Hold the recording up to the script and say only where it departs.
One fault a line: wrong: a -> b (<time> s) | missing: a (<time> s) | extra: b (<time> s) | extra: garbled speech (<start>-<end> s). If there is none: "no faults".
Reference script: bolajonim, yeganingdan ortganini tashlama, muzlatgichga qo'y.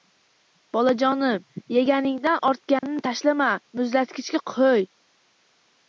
no faults